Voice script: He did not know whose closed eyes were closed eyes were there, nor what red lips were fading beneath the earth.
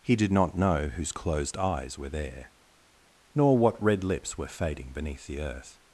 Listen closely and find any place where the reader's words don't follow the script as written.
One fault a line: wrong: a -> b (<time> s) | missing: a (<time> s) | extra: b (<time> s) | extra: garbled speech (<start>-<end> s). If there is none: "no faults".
missing: closed eyes were (2.1 s)